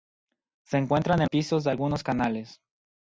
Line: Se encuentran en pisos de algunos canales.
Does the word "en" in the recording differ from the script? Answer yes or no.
no